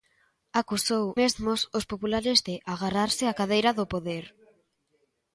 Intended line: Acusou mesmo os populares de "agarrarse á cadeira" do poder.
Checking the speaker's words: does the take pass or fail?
pass